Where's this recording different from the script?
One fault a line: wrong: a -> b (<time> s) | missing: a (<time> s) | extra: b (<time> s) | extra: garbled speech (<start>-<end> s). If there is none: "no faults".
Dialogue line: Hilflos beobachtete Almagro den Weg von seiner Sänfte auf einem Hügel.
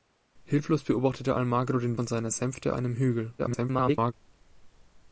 missing: Weg (2.0 s)
missing: auf (2.8 s)
extra: garbled speech (3.4-4.1 s)